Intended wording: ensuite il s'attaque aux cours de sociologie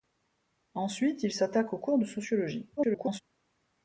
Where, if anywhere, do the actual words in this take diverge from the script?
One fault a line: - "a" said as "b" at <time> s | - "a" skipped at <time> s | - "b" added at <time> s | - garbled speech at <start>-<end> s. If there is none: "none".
- garbled speech at 2.8-3.2 s